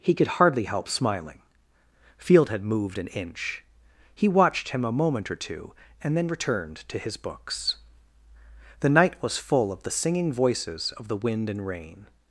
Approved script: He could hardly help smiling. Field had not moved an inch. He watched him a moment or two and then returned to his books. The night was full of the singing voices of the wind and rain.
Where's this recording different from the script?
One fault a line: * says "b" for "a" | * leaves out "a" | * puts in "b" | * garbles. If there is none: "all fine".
* leaves out "not"